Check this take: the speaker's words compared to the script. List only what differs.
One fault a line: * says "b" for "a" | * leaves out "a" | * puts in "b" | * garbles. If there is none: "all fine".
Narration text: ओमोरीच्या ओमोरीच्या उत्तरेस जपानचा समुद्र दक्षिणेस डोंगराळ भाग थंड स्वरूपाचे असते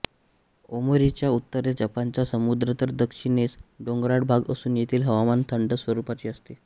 * leaves out "ओमोरीच्या"
* puts in "तर"
* puts in "असून येथील हवामान"